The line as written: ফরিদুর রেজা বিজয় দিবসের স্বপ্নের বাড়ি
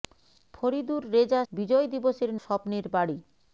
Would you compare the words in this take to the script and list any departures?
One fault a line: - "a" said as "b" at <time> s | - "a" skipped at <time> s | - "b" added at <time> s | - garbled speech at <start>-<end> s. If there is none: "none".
none